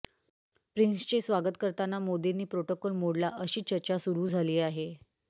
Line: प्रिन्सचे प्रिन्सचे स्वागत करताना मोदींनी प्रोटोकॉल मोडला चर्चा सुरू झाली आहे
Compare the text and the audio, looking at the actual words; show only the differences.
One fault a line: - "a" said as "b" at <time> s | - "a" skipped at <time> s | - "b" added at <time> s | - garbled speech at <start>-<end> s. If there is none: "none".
- "प्रिन्सचे" skipped at 1.2 s
- "अशी" added at 3.4 s